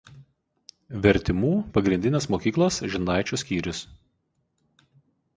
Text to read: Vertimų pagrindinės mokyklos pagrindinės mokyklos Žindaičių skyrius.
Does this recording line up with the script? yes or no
no